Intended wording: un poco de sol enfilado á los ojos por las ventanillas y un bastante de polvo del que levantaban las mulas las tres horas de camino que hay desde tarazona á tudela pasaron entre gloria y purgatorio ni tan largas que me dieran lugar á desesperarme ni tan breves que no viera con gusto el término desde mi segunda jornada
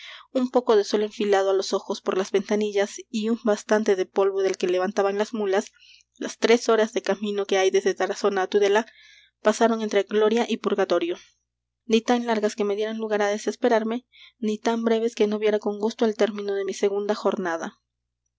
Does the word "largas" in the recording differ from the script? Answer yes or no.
no